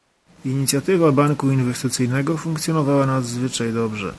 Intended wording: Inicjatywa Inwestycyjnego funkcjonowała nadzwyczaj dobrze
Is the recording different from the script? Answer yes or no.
yes